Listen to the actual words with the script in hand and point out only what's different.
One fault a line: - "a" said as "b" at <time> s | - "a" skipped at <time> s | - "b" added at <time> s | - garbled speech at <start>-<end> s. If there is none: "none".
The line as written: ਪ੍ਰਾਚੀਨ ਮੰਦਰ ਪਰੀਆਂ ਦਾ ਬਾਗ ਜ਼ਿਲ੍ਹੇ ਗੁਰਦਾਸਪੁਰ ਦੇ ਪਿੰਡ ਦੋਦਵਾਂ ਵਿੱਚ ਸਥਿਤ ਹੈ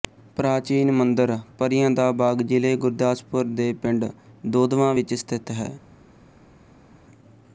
none